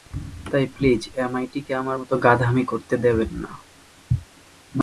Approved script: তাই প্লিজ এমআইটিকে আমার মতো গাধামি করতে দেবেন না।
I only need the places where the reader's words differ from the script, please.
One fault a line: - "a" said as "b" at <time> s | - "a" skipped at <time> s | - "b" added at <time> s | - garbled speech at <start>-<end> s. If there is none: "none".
none